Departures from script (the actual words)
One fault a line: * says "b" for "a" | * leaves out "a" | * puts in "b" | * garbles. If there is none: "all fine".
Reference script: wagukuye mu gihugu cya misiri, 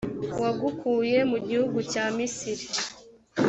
all fine